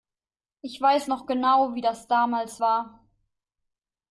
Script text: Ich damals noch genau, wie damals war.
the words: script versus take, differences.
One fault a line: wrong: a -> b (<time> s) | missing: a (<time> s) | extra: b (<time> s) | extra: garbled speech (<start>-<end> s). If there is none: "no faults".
wrong: damals -> weiß (0.8 s)
extra: das (1.8 s)